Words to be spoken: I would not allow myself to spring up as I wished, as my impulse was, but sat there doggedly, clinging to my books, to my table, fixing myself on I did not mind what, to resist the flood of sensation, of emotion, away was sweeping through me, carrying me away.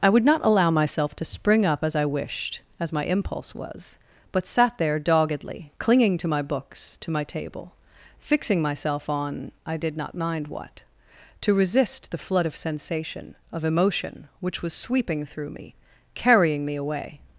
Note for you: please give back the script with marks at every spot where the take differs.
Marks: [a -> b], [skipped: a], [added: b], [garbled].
I would not allow myself to spring up as I wished, as my impulse was, but sat there doggedly, clinging to my books, to my table, fixing myself on I did not mind what, to resist the flood of sensation, of emotion, [away -> which] was sweeping through me, carrying me away.